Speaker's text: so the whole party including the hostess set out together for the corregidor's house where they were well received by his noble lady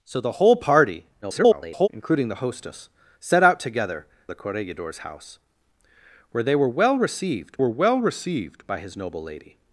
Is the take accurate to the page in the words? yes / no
no